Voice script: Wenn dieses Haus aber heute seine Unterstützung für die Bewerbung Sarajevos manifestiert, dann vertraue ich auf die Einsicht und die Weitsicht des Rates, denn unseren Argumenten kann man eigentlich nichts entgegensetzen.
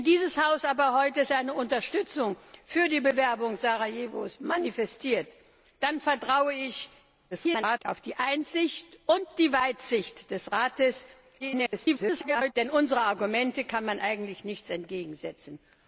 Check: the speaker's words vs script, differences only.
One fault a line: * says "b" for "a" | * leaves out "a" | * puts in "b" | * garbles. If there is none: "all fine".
* garbles
* garbles